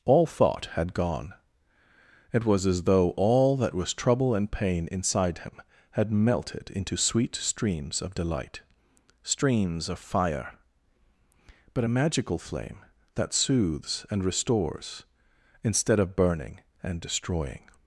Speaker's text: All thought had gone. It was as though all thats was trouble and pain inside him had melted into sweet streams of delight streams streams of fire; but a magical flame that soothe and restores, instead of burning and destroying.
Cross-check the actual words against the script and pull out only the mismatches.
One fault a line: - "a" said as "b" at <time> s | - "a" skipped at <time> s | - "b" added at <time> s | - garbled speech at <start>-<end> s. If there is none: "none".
- "thats" said as "that" at 3.6 s
- "streams" skipped at 9.9 s
- "soothe" said as "soothes" at 13.3 s